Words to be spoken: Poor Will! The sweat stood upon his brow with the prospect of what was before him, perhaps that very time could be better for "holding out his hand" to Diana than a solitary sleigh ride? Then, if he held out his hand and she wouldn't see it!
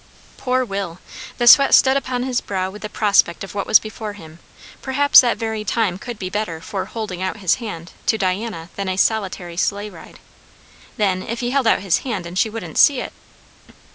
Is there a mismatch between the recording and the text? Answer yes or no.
no